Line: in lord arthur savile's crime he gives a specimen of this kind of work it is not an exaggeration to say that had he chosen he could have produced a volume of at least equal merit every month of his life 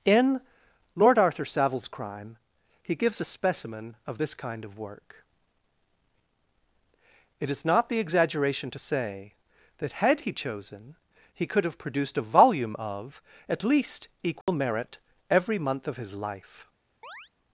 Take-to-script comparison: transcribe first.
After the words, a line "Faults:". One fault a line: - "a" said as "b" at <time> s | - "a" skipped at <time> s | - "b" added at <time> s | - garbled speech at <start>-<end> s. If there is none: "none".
in lord arthur savile's crime he gives a specimen of this kind of work it is not the exaggeration to say that had he chosen he could have produced a volume of at least equal merit every month of his life
Faults:
- "an" said as "the" at 7.9 s